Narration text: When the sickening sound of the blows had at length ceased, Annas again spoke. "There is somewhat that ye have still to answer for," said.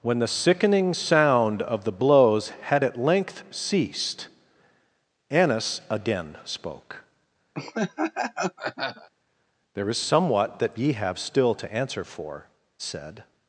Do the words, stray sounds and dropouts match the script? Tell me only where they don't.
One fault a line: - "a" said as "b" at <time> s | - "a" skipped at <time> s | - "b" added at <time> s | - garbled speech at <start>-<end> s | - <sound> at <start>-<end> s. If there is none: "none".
- laugh at 7.5-9.1 s